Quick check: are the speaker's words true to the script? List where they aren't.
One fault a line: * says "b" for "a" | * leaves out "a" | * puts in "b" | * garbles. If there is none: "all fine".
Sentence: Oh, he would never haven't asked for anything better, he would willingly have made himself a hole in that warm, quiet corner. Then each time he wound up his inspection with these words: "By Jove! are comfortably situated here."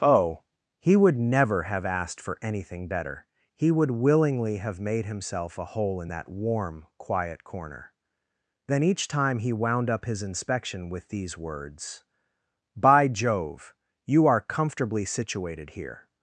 * says "have" for "haven't"
* puts in "you"